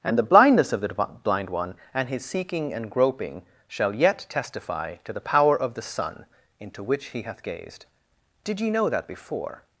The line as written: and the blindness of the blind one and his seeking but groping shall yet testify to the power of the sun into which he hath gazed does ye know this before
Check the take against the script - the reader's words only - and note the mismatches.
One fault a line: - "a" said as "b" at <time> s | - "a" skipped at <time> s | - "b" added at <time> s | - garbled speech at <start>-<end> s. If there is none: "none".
- "but" said as "and" at 2.7 s
- "does" said as "did" at 8.4 s
- "this" said as "that" at 8.9 s